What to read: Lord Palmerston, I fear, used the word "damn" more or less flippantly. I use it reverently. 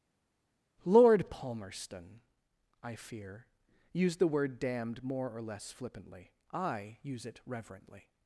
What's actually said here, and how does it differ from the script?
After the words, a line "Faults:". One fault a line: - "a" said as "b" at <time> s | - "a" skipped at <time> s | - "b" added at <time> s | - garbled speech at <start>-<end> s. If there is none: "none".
Lord Palmerston, I fear, used the word "damned" more or less flippantly. I use it reverently.
Faults:
- "damn" said as "damned" at 4.6 s